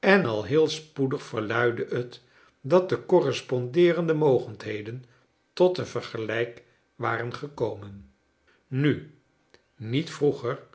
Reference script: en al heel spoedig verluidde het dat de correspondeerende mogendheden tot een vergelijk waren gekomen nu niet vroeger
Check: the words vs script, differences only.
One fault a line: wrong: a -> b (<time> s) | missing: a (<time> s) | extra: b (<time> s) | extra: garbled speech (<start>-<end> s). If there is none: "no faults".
no faults